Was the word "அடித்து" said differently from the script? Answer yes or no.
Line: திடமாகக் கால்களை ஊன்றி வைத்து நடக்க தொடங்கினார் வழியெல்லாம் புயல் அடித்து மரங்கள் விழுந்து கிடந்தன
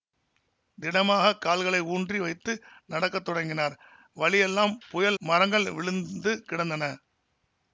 yes